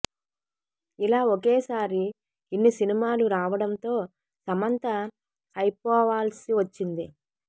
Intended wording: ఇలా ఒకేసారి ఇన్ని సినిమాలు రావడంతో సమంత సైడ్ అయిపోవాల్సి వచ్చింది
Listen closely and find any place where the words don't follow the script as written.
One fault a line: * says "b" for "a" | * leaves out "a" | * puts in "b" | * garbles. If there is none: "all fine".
* leaves out "సైడ్"